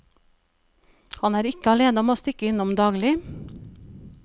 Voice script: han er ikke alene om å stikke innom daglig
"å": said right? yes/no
yes